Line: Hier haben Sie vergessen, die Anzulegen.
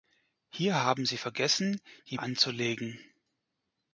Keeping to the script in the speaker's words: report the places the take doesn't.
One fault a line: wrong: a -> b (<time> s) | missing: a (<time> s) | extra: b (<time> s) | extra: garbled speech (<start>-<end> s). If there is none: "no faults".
no faults